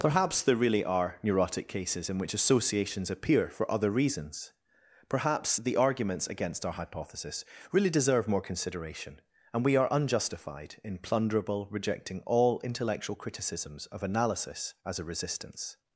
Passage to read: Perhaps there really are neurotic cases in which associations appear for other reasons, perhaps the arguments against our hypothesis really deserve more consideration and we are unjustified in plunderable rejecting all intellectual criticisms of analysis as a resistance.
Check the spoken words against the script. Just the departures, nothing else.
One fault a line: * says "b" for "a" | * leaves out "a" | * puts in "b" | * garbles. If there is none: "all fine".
all fine